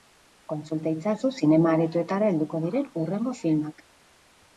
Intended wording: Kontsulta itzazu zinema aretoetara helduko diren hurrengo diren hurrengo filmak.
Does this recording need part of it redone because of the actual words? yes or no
yes